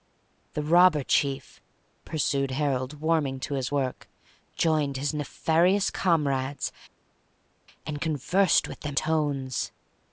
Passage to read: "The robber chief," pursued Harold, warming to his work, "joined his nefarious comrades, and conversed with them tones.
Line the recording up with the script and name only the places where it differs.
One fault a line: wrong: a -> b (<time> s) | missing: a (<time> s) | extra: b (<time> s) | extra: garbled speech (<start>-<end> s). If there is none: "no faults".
no faults